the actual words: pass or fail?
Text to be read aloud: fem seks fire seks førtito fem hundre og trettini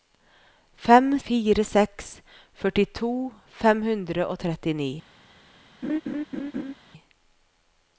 fail